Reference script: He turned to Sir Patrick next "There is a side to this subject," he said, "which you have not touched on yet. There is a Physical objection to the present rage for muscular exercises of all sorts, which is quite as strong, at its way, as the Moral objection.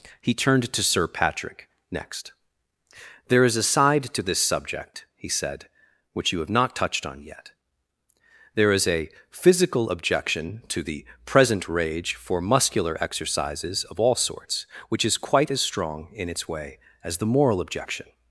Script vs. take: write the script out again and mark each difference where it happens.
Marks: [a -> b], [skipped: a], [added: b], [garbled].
He turned to Sir Patrick next "There is a side to this subject," he said, "which you have not touched on yet. There is a Physical objection to the present rage for muscular exercises of all sorts, which is quite as strong, [at -> in] its way, as the Moral objection.